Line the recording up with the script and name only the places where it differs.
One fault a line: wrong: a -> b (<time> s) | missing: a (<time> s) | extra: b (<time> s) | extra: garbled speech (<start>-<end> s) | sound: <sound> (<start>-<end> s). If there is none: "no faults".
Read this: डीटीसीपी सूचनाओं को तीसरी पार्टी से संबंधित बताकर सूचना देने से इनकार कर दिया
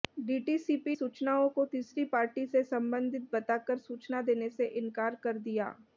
no faults